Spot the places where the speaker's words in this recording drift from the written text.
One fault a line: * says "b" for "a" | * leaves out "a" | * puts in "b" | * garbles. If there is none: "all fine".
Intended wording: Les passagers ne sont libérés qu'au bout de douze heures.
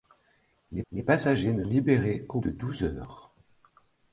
* puts in "les"
* leaves out "sont"
* leaves out "bout"